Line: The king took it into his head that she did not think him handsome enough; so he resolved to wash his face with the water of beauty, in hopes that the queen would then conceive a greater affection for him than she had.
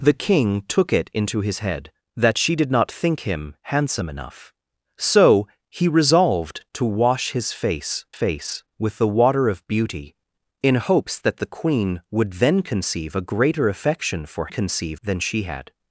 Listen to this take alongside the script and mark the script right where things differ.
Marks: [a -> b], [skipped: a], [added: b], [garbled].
The king took it into his head that she did not think him handsome enough; so he resolved to wash his face [added: face] with the water of beauty, in hopes that the queen would then conceive a greater affection for [him -> conceive] than she had.